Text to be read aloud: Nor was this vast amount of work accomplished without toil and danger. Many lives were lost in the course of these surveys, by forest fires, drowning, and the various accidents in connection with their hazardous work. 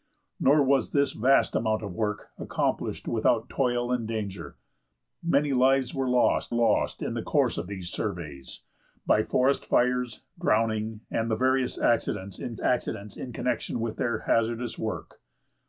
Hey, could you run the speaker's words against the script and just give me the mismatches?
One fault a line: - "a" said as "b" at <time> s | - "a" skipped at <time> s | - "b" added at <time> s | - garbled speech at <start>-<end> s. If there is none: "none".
- "lost" added at 6.5 s
- "accidents in" added at 12.6 s